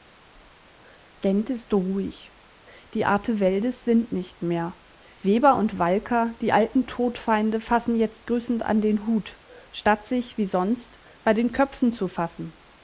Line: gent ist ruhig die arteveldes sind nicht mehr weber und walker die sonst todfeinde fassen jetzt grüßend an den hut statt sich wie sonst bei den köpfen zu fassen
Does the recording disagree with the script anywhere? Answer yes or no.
yes